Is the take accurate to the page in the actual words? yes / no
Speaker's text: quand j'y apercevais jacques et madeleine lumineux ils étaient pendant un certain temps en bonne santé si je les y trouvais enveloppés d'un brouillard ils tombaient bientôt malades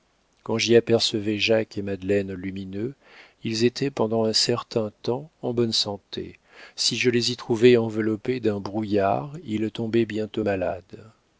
yes